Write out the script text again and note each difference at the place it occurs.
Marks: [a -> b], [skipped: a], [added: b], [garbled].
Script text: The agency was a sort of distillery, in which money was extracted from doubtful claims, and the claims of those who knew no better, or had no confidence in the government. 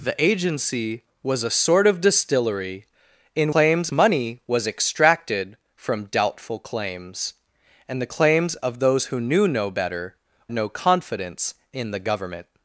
The agency was a sort of distillery, in [which -> claims] money was extracted from doubtful claims, and the claims of those who knew no better, [skipped: or had] no confidence in the government.